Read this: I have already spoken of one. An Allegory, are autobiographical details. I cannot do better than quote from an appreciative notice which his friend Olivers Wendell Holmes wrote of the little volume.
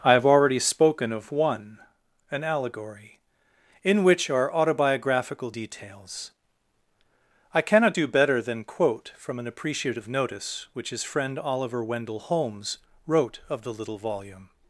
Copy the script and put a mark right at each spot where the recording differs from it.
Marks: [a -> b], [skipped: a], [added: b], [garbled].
I have already spoken of one. An Allegory, [added: in which] are autobiographical details. I cannot do better than quote from an appreciative notice which his friend [Olivers -> Oliver] Wendell Holmes wrote of the little volume.